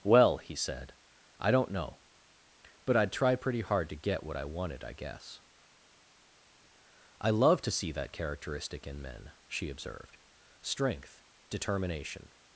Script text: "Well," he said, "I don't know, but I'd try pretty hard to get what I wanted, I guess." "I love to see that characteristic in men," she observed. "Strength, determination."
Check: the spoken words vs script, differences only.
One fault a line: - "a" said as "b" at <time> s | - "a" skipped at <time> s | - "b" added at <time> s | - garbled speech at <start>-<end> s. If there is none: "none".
none